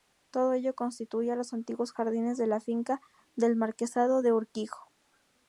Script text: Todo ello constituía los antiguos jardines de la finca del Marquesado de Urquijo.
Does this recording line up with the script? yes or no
yes